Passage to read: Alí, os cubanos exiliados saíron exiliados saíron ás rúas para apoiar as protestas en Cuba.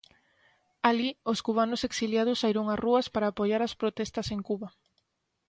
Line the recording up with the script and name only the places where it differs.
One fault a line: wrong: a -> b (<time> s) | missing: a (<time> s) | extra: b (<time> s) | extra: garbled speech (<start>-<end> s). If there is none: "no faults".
missing: exiliados saíron (2.7 s)